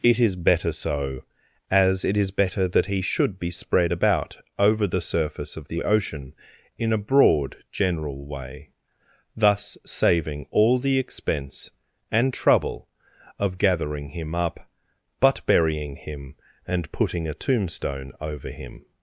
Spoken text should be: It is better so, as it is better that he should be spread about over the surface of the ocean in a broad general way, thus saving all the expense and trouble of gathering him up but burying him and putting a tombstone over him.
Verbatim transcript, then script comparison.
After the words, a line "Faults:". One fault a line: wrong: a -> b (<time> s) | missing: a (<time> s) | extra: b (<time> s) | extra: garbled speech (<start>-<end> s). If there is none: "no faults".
It is better so, as it is better that he should be spread about over the surface of the ocean in a broad general way, thus saving all the expense and trouble of gathering him up but burying him and putting a tombstone over him.
Faults:
no faults